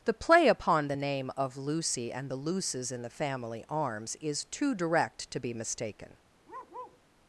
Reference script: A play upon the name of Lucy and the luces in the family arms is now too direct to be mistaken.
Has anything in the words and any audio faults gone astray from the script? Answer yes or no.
yes